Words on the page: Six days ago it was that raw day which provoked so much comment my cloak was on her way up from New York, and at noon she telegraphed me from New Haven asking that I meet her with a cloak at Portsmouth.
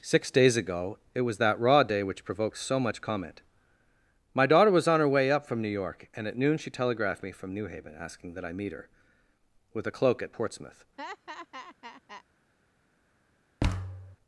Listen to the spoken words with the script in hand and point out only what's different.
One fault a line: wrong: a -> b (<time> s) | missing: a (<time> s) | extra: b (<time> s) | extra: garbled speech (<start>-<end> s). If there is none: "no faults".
wrong: cloak -> daughter (4.5 s)